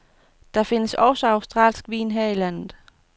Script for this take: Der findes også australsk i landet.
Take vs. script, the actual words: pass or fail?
fail